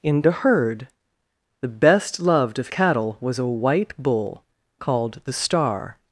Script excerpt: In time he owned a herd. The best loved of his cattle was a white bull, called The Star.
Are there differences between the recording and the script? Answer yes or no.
yes